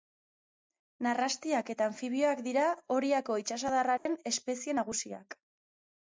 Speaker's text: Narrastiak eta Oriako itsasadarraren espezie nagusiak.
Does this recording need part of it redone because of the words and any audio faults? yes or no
yes